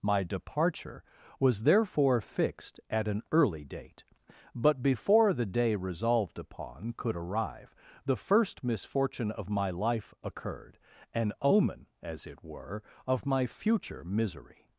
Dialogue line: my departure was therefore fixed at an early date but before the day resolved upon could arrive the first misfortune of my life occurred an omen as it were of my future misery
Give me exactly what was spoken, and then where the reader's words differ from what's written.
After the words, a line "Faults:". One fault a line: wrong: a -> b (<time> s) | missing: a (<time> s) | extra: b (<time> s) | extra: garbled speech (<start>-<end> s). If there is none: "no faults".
my departure was therefore fixed at an early date but before the day resolved upon could arrive the first misfortune of my life occurred an omen as it were of my future misery
Faults:
no faults